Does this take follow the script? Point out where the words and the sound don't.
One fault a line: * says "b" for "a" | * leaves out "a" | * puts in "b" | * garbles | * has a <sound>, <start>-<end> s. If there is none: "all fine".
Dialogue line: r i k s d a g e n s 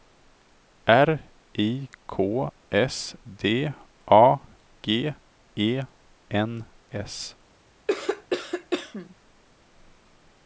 * has a cough, 7.9-9.1 s